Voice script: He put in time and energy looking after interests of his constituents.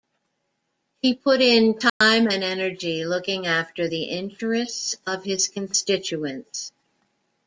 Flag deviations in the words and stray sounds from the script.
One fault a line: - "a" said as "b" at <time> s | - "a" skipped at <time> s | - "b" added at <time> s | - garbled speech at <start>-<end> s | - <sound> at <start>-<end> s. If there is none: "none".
- dropout at 1.9-2.0 s
- "the" added at 3.9 s